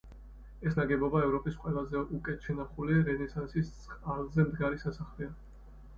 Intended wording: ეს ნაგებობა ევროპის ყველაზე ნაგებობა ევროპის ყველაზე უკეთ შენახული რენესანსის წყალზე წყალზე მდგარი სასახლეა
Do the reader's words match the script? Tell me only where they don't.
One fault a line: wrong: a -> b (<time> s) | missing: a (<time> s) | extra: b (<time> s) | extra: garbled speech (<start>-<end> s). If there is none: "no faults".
missing: ნაგებობა ევროპის ყველაზე (2.0 s)
missing: წყალზე (4.5 s)